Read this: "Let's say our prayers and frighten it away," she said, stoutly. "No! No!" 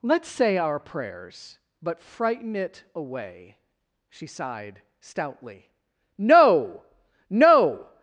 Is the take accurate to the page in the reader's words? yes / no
no